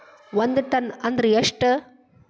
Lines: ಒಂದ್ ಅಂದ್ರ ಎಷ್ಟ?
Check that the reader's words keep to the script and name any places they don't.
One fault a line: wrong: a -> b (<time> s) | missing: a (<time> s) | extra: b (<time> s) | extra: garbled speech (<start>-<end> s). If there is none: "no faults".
extra: ಟನ್ (0.7 s)